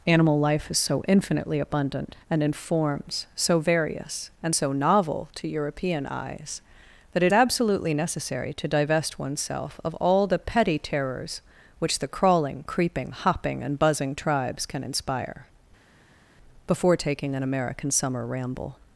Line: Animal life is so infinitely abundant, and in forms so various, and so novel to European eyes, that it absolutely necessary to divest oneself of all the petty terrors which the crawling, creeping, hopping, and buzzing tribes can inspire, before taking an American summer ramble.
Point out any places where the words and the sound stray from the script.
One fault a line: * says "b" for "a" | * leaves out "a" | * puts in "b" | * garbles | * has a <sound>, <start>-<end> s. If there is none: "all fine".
all fine